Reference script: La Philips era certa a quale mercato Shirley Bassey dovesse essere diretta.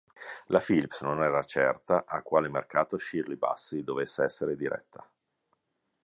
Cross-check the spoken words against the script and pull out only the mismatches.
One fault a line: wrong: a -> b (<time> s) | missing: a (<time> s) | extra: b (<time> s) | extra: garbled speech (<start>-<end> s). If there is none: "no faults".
extra: non (1.0 s)